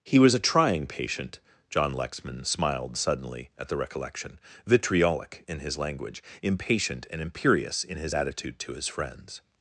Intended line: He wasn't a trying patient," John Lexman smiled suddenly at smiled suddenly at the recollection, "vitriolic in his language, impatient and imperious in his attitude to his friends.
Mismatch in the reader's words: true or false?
true